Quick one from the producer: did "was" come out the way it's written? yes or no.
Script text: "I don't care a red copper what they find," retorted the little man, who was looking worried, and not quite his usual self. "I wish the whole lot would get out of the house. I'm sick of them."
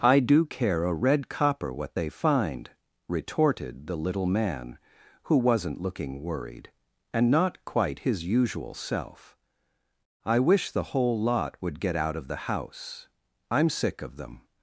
no